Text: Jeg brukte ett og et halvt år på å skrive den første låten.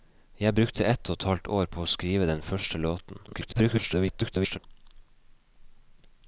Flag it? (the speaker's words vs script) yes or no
yes